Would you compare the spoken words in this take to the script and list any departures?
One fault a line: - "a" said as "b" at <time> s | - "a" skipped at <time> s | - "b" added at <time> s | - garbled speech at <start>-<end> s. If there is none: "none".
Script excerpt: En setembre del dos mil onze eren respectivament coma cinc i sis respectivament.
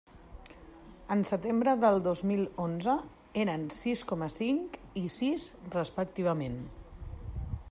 - "respectivament" said as "sis" at 3.8 s